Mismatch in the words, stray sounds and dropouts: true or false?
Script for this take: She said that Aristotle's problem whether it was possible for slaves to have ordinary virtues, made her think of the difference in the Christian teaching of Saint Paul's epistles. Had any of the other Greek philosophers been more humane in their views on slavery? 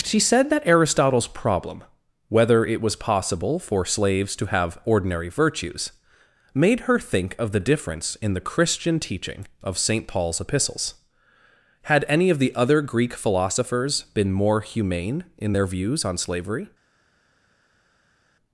false